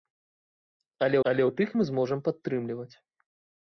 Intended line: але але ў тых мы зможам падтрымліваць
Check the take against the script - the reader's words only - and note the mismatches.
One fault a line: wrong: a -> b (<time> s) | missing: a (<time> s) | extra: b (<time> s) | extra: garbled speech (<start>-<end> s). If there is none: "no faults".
no faults